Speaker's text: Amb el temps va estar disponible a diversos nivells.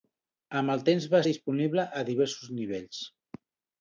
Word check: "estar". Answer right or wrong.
wrong